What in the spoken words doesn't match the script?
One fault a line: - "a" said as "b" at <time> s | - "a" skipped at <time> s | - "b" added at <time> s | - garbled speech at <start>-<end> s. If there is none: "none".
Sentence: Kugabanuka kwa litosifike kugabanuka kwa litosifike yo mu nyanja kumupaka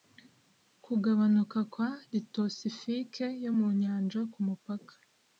- "kugabanuka kwa litosifike" skipped at 3.2 s